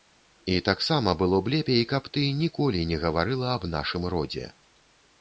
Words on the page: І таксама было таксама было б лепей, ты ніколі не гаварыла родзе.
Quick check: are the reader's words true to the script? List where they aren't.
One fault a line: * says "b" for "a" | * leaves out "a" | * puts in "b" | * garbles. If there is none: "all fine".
* leaves out "таксама было"
* puts in "каб"
* puts in "аб нашым"